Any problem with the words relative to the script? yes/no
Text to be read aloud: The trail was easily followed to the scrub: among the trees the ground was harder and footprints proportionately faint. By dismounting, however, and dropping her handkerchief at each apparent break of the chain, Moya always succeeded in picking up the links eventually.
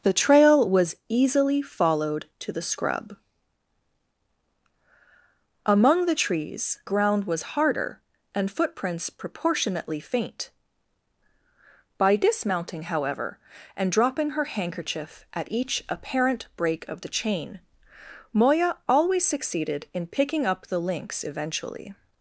yes